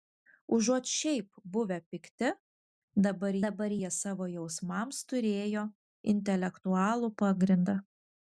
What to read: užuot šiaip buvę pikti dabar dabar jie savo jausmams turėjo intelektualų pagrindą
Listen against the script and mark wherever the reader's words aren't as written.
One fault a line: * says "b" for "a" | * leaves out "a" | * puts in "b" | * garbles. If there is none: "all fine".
all fine